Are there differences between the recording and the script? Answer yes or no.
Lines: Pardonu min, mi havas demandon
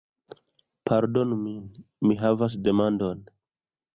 no